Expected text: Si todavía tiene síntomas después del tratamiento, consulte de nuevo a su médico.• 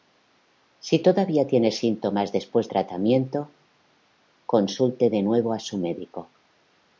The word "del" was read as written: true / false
false